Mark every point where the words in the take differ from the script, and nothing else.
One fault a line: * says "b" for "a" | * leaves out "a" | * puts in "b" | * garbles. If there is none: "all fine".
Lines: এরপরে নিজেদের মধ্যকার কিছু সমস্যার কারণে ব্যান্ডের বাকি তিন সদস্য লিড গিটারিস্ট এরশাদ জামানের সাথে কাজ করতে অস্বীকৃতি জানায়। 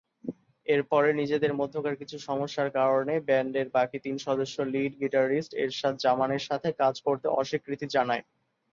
all fine